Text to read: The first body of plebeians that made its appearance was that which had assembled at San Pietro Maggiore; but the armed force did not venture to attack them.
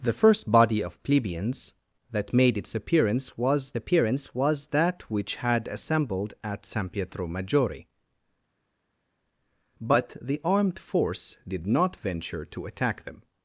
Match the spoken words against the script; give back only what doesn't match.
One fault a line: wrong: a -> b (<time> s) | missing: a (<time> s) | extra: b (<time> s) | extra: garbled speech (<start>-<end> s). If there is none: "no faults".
extra: appearance was (3.7 s)